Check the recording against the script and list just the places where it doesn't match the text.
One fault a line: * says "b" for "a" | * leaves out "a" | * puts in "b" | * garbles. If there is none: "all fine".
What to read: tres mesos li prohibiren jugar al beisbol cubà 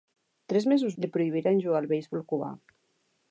all fine